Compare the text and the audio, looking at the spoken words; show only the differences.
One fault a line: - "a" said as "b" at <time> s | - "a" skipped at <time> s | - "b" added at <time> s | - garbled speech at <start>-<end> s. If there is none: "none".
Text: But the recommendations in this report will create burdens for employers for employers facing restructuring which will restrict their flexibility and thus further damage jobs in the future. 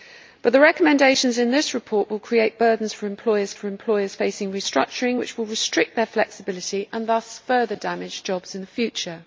none